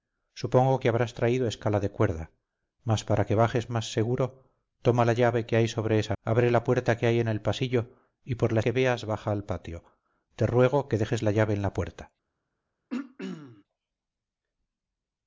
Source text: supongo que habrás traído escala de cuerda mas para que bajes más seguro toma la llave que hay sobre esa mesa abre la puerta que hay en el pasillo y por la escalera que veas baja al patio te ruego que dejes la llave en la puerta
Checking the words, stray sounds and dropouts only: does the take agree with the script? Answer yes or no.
no